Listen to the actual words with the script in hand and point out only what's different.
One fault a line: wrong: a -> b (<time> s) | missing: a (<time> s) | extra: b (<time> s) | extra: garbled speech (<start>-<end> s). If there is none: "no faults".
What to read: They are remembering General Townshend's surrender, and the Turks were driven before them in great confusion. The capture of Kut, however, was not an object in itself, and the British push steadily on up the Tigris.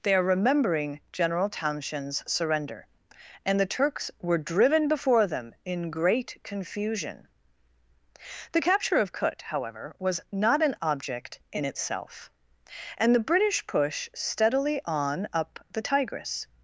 no faults